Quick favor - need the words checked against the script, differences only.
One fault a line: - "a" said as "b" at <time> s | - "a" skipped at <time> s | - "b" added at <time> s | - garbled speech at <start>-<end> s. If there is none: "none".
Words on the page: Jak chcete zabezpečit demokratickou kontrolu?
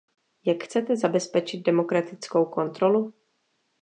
none